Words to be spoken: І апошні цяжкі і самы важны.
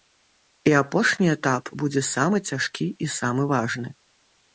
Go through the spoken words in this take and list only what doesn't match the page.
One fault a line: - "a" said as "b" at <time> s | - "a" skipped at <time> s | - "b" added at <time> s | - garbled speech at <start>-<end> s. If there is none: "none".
- "этап будзе самы" added at 1.3 s